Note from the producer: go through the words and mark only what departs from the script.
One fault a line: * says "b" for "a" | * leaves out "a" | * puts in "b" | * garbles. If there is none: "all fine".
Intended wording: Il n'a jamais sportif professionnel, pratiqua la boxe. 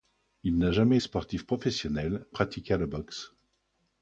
all fine